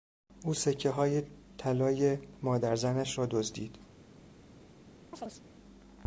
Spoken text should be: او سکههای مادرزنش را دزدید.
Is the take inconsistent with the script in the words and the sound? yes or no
yes